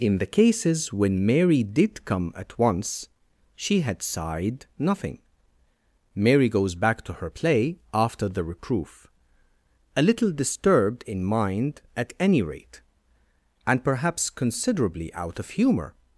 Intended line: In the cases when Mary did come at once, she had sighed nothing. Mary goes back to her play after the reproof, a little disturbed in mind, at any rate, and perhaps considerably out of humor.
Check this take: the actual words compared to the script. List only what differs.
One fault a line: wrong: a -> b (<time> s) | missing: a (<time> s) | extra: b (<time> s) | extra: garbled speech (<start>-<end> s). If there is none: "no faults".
no faults